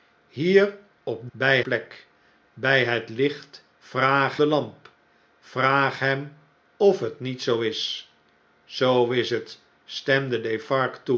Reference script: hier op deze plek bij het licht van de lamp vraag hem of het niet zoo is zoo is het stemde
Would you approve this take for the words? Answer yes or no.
no